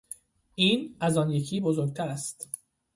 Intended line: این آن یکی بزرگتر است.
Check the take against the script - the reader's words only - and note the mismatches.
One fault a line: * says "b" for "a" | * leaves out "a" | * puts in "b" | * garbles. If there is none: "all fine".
* puts in "از"